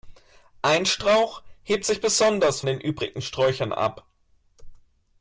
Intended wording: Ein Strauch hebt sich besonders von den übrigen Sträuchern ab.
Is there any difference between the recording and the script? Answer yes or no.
yes